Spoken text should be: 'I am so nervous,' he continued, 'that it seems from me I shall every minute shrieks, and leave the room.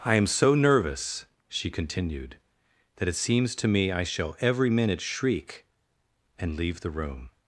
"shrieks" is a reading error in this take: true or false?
true